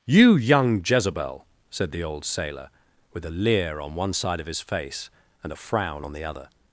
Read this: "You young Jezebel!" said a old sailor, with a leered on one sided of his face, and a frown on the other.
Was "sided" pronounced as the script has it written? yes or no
no